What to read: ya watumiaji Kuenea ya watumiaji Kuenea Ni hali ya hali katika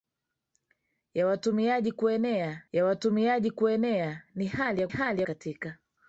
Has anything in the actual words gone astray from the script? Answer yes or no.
no